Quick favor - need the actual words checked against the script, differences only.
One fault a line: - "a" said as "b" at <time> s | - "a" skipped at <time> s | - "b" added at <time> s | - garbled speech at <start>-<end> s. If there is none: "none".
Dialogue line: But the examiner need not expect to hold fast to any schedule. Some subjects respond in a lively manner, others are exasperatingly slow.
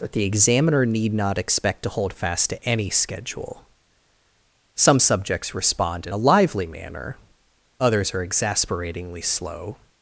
- "But" said as "That" at 0.0 s